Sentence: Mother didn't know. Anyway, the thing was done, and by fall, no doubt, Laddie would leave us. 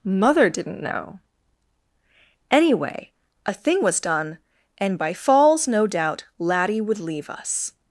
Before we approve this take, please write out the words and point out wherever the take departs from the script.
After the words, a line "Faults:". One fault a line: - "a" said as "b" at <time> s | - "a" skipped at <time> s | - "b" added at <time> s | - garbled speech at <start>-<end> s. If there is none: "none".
Mother didn't know. Anyway, a thing was done, and by falls, no doubt, Laddie would leave us.
Faults:
- "the" said as "a" at 3.5 s
- "fall" said as "falls" at 5.1 s